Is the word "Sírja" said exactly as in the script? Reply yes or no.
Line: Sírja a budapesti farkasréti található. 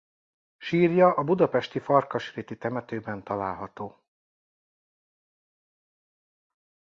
yes